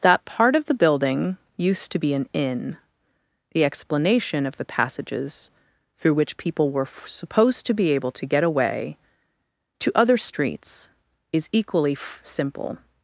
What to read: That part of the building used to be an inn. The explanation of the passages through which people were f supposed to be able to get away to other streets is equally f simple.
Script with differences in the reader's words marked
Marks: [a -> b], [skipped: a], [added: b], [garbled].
That part of the building used to be an inn. The explanation of the passages through which people were f supposed to be able to get away to other streets is equally f simple.